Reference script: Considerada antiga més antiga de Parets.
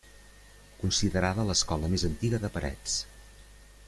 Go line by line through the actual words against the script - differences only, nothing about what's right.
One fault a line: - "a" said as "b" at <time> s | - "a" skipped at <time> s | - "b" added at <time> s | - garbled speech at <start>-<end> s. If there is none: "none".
- "antiga" said as "l'escola" at 1.5 s